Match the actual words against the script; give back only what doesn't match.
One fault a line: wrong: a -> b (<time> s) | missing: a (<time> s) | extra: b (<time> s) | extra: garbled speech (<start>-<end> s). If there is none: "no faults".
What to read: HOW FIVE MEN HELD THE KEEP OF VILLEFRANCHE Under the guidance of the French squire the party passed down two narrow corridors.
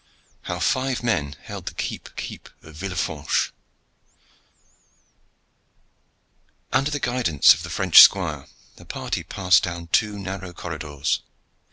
extra: KEEP (2.1 s)